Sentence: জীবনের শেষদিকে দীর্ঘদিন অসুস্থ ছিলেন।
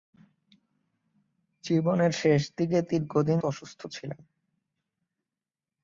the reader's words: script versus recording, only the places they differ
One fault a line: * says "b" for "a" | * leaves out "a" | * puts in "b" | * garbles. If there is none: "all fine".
all fine